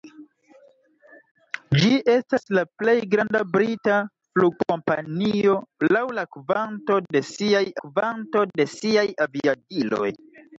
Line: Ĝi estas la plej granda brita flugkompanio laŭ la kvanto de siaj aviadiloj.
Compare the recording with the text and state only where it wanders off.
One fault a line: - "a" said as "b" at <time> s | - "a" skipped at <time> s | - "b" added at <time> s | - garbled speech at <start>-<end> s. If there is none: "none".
- "kvanto de siaj" added at 7.9 s